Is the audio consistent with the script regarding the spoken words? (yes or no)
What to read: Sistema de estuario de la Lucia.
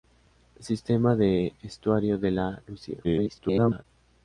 no